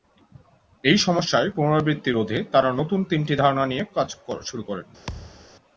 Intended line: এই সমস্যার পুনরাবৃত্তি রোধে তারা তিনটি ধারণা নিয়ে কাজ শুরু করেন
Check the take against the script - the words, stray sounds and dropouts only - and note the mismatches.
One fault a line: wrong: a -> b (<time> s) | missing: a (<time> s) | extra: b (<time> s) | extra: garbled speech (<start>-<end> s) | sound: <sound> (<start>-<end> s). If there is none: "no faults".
extra: নতুন (2.8 s)
sound: thud (5.1-5.5 s)